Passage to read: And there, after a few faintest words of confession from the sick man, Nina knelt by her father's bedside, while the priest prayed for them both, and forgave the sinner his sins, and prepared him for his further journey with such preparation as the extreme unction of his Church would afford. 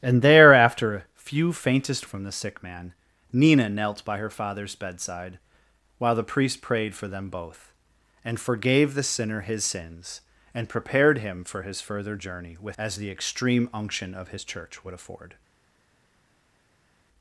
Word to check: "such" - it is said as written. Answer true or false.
false